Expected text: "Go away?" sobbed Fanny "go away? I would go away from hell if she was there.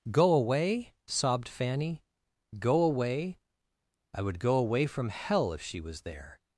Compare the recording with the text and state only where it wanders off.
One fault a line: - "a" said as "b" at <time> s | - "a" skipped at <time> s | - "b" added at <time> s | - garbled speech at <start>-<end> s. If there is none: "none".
none